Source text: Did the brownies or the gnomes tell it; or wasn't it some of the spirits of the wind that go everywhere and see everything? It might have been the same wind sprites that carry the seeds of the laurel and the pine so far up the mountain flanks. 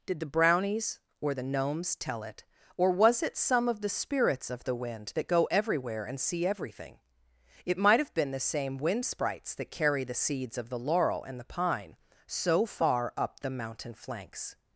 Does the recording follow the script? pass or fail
fail